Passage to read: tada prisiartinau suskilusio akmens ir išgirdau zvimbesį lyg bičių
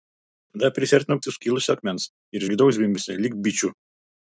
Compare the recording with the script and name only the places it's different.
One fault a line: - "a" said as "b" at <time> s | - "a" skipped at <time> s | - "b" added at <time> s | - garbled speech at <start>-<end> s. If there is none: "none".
none